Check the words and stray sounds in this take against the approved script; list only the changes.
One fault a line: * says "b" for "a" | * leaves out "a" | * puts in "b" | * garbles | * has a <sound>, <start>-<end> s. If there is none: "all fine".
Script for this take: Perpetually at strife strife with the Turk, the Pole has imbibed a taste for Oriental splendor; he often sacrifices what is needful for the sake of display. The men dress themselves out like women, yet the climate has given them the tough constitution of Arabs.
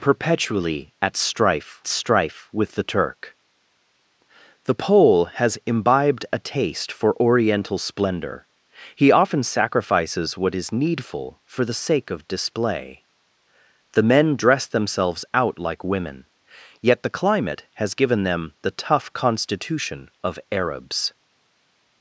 all fine